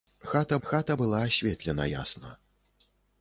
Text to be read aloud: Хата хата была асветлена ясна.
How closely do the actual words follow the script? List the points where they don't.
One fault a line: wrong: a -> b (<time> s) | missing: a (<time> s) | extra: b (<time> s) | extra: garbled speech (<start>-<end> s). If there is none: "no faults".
no faults